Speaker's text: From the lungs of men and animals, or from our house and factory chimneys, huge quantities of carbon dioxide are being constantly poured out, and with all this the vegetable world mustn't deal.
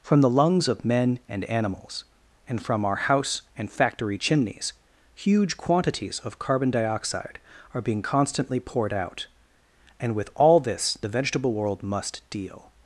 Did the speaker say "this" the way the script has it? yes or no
yes